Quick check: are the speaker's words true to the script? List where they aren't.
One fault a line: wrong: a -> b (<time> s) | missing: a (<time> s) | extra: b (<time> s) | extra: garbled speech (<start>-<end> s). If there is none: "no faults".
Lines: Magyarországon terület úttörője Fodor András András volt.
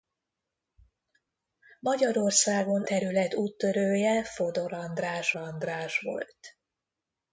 no faults